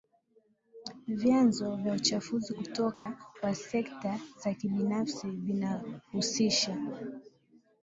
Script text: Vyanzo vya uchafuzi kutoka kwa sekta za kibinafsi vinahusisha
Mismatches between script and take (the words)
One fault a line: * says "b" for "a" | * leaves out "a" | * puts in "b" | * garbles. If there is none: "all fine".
all fine